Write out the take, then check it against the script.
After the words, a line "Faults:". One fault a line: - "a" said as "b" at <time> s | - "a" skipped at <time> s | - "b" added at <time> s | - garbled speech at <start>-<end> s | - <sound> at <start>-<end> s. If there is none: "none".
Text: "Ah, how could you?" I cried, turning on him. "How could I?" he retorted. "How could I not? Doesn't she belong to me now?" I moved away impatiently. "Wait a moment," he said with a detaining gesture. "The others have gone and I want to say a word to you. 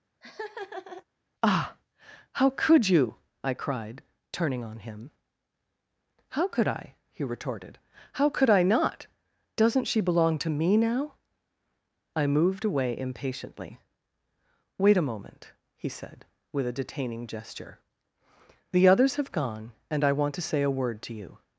"Ah, how could you?" I cried, turning on him. "How could I?" he retorted. "How could I not? Doesn't she belong to me now?" I moved away impatiently. "Wait a moment," he said with a detaining gesture. "The others have gone and I want to say a word to you.
Faults:
- laugh at 0.2-1.0 s